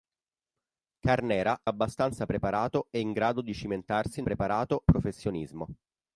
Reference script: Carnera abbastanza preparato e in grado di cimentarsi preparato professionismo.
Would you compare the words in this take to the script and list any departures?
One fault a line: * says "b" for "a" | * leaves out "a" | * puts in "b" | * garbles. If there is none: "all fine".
all fine